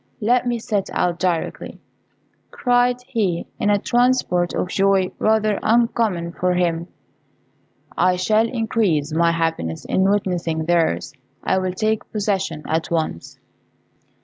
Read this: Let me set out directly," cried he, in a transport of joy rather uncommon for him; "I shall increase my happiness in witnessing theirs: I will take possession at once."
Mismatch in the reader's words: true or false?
false